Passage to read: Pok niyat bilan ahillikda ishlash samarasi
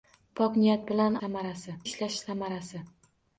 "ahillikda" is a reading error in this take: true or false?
true